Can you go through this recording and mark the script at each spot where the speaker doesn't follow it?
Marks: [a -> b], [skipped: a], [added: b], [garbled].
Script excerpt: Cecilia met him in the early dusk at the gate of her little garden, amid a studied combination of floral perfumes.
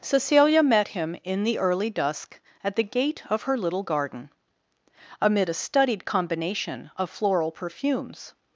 Cecilia met him in the early dusk at the gate of her little garden, amid a studied combination of floral perfumes.